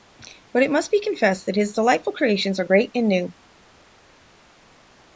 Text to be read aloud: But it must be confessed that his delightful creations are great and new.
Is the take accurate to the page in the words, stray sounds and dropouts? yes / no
yes